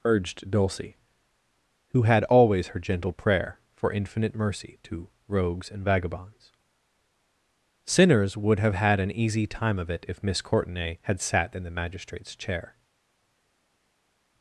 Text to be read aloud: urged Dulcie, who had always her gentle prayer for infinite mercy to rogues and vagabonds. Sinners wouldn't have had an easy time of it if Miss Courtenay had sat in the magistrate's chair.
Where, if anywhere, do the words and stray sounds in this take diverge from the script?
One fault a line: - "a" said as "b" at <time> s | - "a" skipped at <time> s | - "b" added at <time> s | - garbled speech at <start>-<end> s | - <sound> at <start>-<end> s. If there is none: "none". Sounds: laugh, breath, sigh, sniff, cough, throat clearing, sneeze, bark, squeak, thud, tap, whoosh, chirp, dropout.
- "wouldn't" said as "would" at 8.4 s